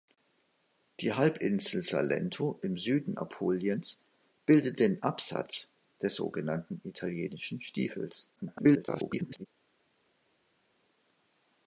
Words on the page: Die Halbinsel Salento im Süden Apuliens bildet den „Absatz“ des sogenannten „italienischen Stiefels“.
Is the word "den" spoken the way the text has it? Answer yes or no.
yes